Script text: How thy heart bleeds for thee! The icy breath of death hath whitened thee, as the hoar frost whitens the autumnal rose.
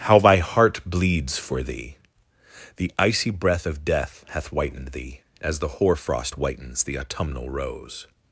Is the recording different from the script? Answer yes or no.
no